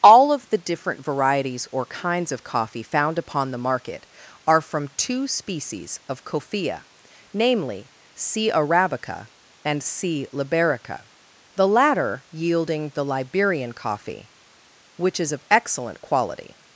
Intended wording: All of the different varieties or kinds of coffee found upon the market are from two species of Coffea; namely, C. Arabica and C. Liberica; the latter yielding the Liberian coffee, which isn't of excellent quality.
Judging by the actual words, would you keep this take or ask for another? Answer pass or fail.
fail